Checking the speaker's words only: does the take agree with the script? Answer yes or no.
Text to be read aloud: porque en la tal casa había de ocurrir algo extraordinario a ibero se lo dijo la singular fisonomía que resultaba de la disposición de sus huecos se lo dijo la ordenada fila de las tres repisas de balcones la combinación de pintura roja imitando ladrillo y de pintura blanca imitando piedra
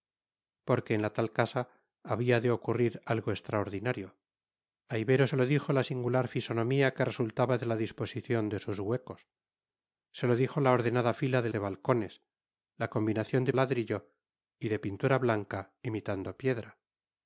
no